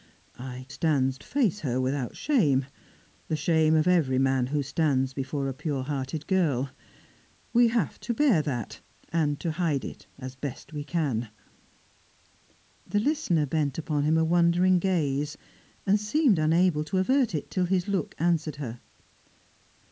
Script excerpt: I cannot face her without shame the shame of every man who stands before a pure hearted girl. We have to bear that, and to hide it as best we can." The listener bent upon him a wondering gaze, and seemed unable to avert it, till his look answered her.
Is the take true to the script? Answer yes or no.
no